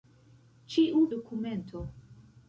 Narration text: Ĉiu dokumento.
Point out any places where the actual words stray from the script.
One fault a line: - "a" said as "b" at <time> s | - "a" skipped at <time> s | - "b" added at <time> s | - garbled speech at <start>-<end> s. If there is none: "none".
none